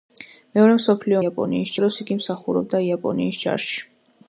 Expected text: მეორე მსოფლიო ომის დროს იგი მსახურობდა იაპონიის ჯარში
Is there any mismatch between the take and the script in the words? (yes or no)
yes